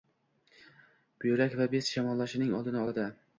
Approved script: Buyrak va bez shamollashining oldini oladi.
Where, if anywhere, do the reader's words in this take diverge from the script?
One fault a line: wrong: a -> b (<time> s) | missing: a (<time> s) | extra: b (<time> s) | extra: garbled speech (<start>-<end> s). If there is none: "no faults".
no faults